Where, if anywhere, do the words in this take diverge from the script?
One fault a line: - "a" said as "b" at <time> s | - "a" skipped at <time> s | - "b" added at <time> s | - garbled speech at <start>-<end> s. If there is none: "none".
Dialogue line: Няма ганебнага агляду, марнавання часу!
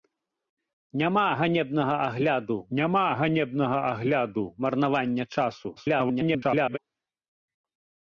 - "няма ганебнага агляду" added at 2.8 s
- garbled speech at 5.8-6.8 s